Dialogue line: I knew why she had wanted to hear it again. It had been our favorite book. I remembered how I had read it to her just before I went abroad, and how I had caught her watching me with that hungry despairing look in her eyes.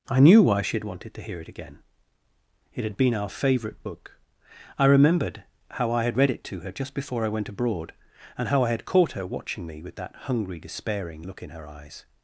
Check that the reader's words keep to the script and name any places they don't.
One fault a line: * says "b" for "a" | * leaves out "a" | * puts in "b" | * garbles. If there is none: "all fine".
all fine